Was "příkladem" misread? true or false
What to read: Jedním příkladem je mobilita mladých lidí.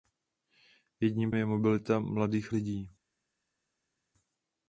true